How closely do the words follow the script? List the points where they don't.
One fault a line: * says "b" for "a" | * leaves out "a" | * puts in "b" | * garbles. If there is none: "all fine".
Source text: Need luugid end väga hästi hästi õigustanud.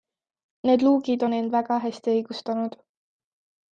* puts in "on"
* leaves out "hästi"